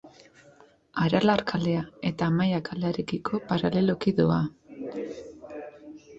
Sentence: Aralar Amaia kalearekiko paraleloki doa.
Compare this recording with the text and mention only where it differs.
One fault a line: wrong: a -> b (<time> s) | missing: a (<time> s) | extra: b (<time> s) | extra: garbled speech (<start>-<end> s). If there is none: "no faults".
extra: kalea eta (1.5 s)